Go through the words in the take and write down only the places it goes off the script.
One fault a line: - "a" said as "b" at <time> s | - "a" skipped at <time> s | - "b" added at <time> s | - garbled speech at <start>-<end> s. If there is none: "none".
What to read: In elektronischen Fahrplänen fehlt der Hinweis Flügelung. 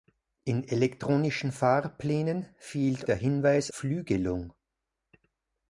none